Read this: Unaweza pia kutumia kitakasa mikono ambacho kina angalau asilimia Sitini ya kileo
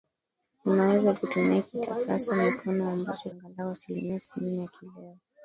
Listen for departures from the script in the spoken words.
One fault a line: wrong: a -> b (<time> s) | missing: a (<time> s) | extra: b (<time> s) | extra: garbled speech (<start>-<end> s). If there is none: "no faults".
missing: pia (1.1 s)
missing: kina (3.3 s)